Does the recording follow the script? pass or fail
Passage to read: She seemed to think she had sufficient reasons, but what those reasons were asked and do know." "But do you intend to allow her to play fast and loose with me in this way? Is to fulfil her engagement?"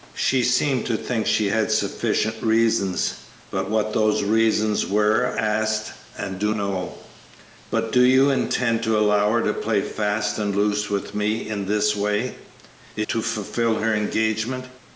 pass